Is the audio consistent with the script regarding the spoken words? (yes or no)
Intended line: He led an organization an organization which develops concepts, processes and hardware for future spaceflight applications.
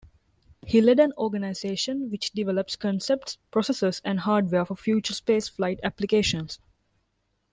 no